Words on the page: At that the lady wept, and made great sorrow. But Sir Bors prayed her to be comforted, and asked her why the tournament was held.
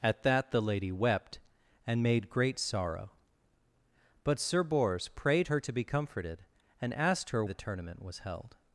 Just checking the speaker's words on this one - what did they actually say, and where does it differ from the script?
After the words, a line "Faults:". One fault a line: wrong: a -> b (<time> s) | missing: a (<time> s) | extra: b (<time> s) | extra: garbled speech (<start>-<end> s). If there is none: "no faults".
At that the lady wept, and made great sorrow. But Sir Bors prayed her to be comforted, and asked her the tournament was held.
Faults:
missing: why (7.4 s)